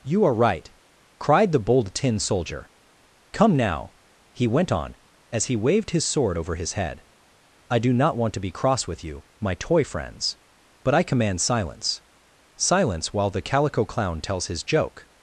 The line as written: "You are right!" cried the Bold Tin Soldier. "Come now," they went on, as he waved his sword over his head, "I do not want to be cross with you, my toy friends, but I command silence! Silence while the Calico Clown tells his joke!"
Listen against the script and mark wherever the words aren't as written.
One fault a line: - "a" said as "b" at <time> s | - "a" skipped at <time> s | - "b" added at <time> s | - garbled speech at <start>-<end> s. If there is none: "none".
- "they" said as "he" at 4.3 s